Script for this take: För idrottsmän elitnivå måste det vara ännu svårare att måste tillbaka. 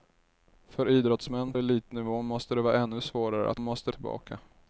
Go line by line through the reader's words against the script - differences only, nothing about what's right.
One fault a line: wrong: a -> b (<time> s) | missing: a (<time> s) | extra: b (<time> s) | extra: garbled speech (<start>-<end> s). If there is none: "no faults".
no faults